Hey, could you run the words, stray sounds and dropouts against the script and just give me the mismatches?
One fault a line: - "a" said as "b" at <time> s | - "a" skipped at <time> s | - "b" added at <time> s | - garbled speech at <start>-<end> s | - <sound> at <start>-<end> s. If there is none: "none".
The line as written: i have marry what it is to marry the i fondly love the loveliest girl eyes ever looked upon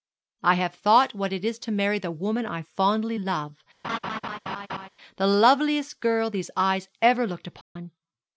- "marry" said as "thought" at 0.7 s
- "woman" added at 2.1 s
- laugh at 3.8-4.9 s
- "these" added at 6.3 s
- dropout at 7.6-7.8 s